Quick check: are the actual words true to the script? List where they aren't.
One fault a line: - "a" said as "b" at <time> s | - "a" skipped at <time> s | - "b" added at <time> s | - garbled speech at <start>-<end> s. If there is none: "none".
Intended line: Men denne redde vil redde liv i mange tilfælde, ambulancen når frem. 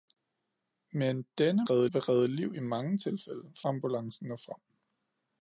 none